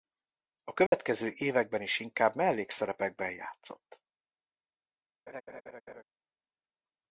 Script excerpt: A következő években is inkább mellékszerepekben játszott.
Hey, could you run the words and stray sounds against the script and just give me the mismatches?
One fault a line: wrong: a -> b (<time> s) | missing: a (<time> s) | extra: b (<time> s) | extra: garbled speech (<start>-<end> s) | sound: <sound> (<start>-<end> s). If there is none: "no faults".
sound: dropout (0.9-0.9 s)
sound: laugh (5.3-6.0 s)